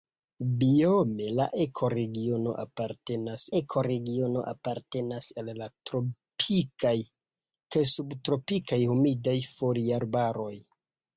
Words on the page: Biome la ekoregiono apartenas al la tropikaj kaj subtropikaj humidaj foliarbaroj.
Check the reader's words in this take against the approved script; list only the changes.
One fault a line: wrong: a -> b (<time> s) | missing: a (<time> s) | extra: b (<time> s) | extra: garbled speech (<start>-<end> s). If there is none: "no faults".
extra: ekoregiono apartenas (3.6 s)